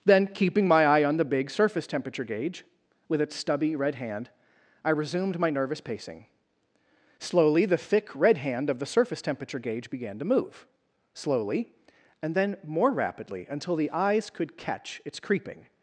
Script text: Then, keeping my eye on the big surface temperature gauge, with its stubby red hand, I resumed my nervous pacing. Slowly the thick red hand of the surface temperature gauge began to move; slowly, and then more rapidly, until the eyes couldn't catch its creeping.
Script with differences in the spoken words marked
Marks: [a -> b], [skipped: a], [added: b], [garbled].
Then, keeping my eye on the big surface temperature gauge, with its stubby red hand, I resumed my nervous pacing. Slowly the thick red hand of the surface temperature gauge began to move; slowly, and then more rapidly, until the eyes [couldn't -> could] catch its creeping.